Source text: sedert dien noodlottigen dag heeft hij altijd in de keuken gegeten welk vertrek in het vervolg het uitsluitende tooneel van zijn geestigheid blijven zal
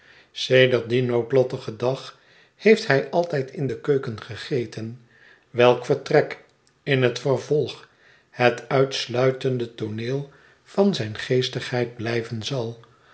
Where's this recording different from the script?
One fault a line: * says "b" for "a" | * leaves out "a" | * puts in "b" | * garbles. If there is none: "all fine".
all fine